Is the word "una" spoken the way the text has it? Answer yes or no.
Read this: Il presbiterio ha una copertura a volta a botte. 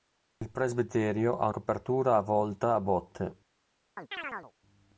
no